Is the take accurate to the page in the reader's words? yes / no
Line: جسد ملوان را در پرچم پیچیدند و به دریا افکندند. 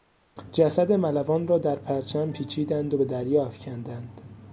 yes